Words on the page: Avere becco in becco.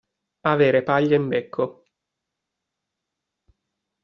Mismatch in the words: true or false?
true